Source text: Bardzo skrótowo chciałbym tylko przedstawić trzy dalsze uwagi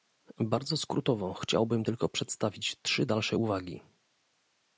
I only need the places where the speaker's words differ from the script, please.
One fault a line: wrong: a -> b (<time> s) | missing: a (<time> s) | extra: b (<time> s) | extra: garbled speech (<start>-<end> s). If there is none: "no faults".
no faults